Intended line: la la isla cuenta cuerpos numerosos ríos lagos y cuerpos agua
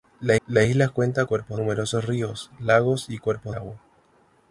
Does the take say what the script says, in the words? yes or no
yes